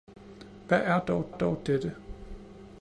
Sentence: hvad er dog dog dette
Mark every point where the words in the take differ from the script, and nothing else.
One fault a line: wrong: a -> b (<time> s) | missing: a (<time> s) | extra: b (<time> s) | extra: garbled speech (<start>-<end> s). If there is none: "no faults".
no faults